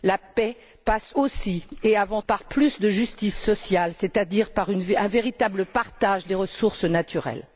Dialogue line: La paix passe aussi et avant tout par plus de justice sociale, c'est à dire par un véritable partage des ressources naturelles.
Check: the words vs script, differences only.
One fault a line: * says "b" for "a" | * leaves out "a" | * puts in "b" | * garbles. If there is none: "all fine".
* leaves out "tout"